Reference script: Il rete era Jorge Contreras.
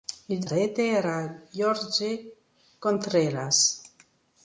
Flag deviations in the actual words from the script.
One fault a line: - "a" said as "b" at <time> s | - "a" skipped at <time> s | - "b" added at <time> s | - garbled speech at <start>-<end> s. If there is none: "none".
none